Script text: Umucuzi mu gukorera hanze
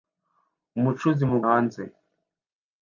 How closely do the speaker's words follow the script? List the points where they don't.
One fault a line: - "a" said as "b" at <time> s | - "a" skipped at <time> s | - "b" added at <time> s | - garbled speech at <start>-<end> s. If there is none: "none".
- "gukorera" skipped at 1.4 s